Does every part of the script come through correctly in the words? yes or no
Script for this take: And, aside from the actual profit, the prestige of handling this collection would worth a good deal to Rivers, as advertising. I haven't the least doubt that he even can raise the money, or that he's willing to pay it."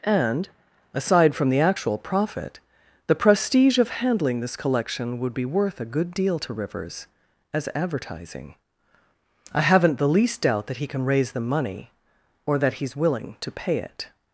no